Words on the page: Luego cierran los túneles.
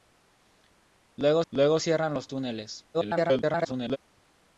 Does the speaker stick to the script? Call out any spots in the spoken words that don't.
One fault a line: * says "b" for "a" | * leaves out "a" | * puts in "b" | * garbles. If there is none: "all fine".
* puts in "luego"
* garbles